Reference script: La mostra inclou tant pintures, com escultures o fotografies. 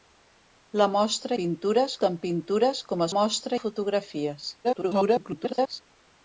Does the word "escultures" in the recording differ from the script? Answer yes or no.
yes